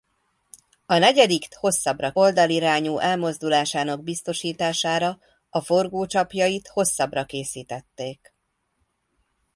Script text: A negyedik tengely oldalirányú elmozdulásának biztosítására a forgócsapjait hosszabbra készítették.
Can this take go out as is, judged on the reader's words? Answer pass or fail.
fail